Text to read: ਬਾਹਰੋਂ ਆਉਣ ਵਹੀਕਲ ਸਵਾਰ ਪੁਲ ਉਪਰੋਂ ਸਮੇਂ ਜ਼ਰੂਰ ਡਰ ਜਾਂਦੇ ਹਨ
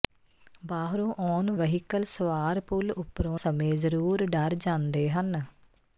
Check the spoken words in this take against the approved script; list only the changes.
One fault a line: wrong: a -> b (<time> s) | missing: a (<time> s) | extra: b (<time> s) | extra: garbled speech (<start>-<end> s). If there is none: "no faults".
no faults